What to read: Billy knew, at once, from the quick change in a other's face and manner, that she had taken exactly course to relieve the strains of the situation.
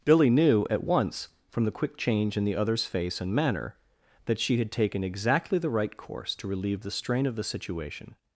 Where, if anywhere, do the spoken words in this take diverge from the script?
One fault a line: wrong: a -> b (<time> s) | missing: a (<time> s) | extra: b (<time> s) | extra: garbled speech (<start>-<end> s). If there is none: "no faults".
wrong: a -> the (2.4 s)
extra: the right (5.6 s)
wrong: strains -> strain (6.9 s)